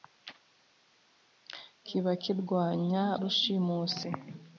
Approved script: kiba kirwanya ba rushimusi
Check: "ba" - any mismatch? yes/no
yes